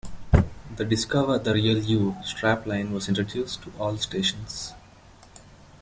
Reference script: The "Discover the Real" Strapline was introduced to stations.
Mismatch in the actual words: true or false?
true